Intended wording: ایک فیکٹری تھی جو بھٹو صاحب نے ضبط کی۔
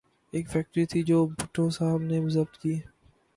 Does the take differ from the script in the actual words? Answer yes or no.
no